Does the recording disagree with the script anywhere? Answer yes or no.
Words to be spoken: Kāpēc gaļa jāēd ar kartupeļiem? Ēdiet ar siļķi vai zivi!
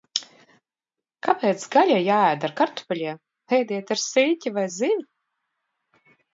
no